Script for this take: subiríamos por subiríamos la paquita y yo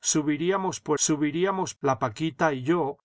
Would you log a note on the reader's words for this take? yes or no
no